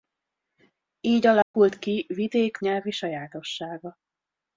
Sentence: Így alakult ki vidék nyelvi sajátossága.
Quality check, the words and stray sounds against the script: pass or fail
fail